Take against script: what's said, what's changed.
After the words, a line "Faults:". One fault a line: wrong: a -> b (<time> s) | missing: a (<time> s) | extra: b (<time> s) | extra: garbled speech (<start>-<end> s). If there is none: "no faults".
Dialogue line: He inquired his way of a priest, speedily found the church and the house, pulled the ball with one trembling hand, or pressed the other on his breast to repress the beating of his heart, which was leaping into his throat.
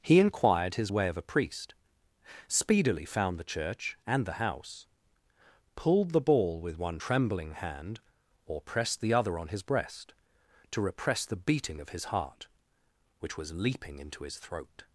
He inquired his way of a priest, speedily found the church and the house, pulled the ball with one trembling hand, or pressed the other on his breast to repress the beating of his heart, which was leaping into his throat.
Faults:
no faults